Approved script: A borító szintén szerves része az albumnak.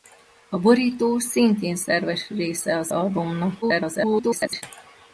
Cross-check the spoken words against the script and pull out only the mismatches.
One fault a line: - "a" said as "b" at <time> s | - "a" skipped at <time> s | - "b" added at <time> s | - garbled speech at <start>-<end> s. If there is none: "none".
- garbled speech at 3.6-4.6 s